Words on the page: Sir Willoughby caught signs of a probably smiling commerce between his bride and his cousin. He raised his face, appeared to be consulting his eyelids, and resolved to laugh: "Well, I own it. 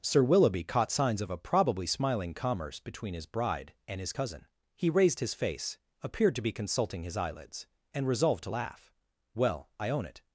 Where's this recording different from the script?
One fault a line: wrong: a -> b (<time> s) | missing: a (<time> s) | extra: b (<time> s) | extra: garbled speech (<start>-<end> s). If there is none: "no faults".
no faults